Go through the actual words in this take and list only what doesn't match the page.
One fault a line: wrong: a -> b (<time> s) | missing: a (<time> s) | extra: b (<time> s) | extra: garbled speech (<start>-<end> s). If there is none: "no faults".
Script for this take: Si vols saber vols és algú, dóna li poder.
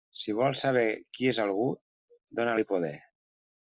wrong: vols -> qui (1.2 s)